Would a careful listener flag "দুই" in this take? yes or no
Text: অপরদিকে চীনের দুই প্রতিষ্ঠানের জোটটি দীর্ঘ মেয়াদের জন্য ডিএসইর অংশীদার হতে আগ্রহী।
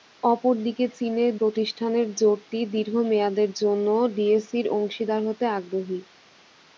yes